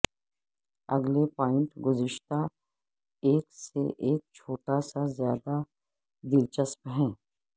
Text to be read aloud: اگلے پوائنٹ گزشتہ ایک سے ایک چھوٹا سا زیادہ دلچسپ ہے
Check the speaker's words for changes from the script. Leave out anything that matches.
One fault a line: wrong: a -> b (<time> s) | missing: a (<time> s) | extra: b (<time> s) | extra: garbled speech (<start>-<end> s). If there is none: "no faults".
no faults